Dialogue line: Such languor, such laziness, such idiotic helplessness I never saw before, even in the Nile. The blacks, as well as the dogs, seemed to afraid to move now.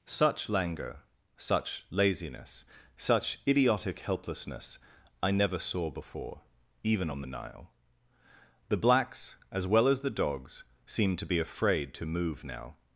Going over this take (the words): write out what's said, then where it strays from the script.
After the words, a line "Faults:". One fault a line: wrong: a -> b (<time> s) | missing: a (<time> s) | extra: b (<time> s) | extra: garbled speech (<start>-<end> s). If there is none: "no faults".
Such languor, such laziness, such idiotic helplessness I never saw before, even on the Nile. The blacks, as well as the dogs, seemed to be afraid to move now.
Faults:
wrong: in -> on (7.1 s)
extra: be (11.3 s)